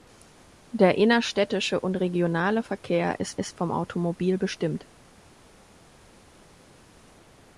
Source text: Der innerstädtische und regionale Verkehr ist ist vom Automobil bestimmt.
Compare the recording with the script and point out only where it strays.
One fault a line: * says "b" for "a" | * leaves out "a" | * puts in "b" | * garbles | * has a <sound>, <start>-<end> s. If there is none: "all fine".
all fine